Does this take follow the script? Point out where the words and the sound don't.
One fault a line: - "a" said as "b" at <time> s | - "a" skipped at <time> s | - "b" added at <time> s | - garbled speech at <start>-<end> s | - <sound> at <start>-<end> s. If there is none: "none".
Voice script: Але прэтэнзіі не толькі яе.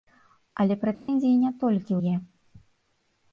- dropout at 0.9-1.1 s